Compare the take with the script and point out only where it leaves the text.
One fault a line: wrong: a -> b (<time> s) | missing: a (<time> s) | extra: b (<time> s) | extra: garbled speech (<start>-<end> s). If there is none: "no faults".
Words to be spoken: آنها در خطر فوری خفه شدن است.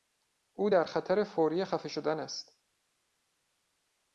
wrong: آنها -> او (0.5 s)